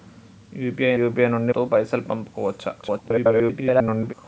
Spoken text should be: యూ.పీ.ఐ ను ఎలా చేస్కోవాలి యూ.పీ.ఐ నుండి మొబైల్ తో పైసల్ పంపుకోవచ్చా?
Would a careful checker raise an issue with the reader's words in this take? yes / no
yes